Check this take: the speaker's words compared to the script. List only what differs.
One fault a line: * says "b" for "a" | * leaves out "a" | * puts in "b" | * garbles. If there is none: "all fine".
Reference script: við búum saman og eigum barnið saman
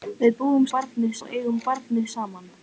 * says "barnið" for "saman"